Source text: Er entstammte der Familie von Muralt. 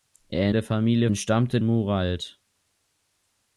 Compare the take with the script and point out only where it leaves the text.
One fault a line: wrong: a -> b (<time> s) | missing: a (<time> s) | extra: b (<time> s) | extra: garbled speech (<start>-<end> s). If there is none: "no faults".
missing: entstammte (0.5 s)
wrong: von -> entstammte (1.1 s)